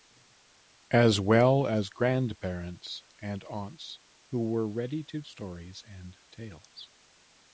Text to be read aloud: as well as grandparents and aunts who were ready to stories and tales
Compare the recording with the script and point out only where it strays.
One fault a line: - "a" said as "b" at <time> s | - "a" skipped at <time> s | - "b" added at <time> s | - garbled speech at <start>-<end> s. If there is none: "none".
none